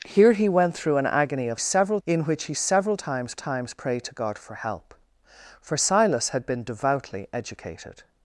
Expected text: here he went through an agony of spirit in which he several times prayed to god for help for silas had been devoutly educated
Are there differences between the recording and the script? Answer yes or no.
yes